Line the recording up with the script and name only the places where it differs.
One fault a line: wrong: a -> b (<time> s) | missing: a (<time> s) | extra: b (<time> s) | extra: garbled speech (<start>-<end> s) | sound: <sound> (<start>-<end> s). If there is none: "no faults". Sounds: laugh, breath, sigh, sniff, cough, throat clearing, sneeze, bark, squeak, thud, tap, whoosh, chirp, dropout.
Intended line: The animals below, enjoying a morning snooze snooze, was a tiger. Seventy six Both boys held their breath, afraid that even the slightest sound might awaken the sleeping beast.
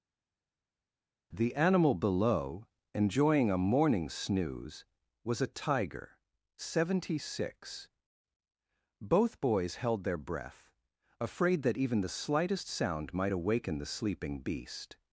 wrong: animals -> animal (1.6 s)
missing: snooze (4.8 s)